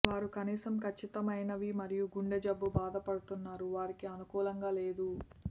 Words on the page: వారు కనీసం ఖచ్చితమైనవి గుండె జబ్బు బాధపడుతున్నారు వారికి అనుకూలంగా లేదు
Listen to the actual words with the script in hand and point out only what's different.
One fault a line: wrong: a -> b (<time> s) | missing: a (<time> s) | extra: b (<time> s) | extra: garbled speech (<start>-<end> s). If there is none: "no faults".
extra: మరియు (1.8 s)